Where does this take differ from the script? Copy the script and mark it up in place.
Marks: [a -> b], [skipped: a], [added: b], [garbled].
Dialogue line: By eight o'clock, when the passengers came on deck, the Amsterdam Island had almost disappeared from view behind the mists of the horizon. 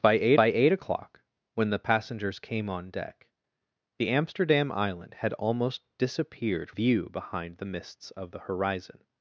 By eight [added: by eight] o'clock, when the passengers came on deck, the Amsterdam Island had almost disappeared [skipped: from] view behind the mists of the horizon.